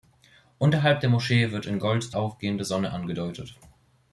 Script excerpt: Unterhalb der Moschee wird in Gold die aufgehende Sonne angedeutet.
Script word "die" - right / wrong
wrong